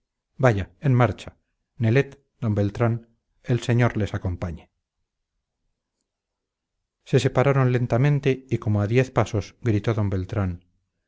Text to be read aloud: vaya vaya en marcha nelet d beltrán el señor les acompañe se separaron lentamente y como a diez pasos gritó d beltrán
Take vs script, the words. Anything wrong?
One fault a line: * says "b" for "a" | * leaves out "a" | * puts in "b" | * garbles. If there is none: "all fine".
* leaves out "vaya"